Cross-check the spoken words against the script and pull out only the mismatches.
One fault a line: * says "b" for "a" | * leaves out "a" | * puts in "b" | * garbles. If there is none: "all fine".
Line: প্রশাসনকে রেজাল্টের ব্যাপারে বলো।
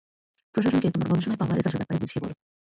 * puts in "তোমার গবেষণায় পাওয়া"
* puts in "বুঝিয়ে"